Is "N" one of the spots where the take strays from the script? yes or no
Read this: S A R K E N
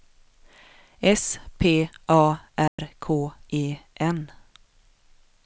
no